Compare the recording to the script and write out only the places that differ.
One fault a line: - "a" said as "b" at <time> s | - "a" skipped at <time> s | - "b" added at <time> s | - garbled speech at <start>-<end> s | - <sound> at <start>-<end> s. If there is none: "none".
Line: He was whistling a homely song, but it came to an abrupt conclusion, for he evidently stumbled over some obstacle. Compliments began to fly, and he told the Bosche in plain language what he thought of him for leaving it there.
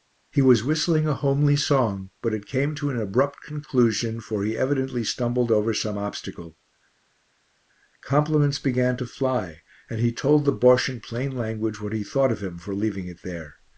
none